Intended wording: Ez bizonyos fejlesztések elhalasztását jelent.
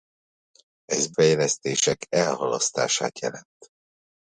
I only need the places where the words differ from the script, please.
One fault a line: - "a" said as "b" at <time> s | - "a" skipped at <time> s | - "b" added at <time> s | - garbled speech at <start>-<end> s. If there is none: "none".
- "bizonyos" skipped at 1.1 s